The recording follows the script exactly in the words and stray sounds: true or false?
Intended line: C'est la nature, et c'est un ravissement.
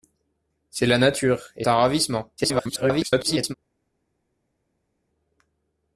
false